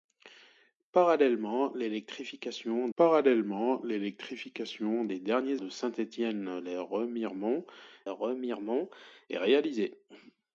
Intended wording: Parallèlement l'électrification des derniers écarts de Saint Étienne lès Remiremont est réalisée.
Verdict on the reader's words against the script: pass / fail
fail